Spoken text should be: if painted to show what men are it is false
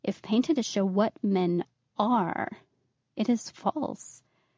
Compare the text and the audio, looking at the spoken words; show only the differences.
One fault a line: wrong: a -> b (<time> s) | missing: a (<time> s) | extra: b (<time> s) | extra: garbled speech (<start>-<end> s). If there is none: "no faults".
no faults